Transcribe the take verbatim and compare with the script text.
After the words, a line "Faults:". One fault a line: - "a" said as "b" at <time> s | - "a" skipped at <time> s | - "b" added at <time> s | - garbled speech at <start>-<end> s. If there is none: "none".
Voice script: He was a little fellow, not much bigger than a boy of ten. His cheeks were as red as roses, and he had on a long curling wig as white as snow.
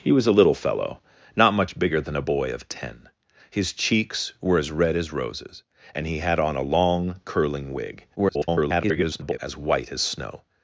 He was a little fellow, not much bigger than a boy of ten. His cheeks were as red as roses, and he had on a long curling wig [garbled] as white as snow.
Faults:
- garbled speech at 8.2-9.4 s